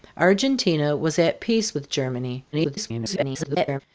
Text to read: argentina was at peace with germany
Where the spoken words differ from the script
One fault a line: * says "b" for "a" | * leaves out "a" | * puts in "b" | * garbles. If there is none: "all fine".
* garbles